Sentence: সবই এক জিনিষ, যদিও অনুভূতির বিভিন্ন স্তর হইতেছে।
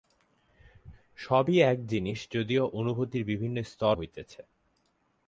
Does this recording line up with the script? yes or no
yes